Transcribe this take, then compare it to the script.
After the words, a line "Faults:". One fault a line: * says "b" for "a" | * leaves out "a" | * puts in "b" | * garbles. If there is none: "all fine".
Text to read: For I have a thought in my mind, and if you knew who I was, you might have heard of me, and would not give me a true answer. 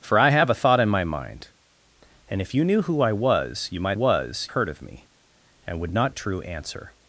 For I have a thought in my mind, and if you knew who I was, you might was heard of me, and would not a true answer.
Faults:
* says "was" for "have"
* leaves out "give me"